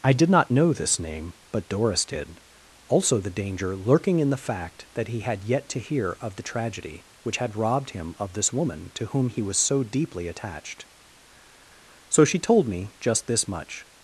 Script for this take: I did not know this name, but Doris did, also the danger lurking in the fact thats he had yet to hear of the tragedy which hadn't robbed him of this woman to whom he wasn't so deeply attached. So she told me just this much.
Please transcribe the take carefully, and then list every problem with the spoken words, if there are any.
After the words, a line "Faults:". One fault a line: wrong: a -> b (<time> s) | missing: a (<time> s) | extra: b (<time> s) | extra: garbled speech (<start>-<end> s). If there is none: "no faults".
I did not know this name, but Doris did, also the danger lurking in the fact that he had yet to hear of the tragedy which had robbed him of this woman to whom he was so deeply attached. So she told me just this much.
Faults:
wrong: thats -> that (5.0 s)
wrong: hadn't -> had (7.4 s)
wrong: wasn't -> was (9.4 s)